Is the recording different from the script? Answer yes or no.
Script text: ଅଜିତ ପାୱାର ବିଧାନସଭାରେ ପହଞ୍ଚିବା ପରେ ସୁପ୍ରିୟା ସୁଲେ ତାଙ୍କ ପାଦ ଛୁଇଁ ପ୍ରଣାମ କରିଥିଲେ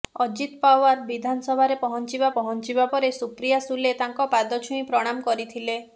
yes